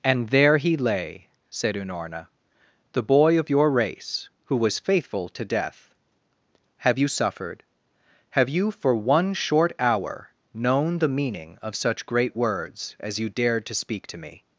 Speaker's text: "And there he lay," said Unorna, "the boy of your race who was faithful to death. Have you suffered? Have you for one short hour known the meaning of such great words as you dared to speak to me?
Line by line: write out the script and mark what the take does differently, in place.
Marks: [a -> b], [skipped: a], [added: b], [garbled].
"And there he lay," said Unorna, "the boy of your race who was faithful to death. Have you suffered? Have you for one short hour known the meaning of such great words as you dared to speak to me?